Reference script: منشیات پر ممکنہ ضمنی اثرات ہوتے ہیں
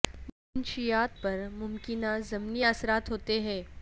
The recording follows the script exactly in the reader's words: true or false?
true